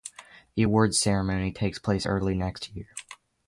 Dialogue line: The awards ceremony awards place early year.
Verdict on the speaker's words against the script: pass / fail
fail